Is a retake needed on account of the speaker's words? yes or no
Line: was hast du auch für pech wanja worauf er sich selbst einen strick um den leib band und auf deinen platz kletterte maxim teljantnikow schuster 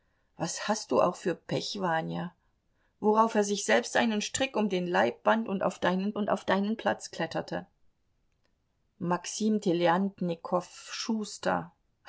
yes